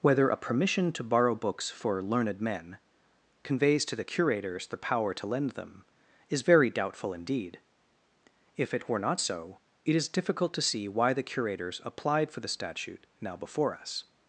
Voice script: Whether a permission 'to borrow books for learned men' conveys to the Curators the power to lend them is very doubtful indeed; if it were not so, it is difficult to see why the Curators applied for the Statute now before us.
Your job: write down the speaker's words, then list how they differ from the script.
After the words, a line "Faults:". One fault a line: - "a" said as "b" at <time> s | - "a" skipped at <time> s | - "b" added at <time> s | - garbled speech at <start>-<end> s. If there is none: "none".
Whether a permission 'to borrow books for learned men' conveys to the Curators the power to lend them is very doubtful indeed; if it were not so, it is difficult to see why the Curators applied for the Statute now before us.
Faults:
none